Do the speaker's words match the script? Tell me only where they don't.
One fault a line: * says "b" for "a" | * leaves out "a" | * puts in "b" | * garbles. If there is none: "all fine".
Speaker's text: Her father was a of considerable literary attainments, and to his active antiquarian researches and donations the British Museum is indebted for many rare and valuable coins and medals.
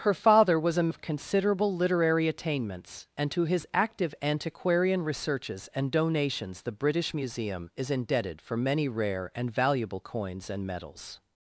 all fine